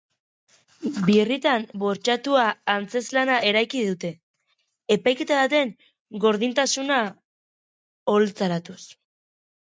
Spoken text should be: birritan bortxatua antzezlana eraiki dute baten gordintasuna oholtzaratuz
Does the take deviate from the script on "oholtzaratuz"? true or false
false